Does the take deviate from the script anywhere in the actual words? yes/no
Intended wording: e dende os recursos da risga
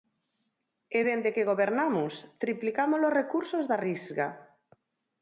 yes